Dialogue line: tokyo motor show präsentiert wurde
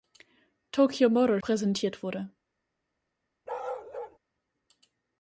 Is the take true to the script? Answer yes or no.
no